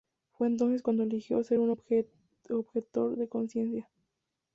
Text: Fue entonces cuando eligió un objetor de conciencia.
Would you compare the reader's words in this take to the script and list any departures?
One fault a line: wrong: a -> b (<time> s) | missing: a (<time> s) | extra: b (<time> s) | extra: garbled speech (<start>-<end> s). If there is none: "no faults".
extra: ser (1.4 s)